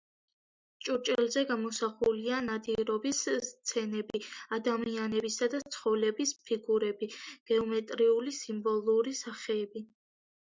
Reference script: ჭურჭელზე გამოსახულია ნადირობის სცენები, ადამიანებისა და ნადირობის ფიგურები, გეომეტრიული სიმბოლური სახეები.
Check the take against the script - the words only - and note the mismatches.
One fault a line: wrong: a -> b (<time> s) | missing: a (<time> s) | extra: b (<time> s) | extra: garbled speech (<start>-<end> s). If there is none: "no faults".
wrong: ნადირობის -> ცხოველების (5.8 s)